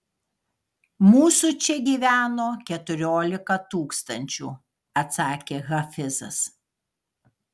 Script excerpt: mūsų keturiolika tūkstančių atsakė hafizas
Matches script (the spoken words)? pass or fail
fail